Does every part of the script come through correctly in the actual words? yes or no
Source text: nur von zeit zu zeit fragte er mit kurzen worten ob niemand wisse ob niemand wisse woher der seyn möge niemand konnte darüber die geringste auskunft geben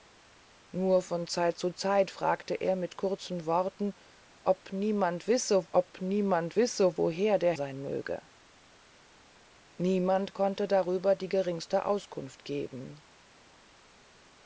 yes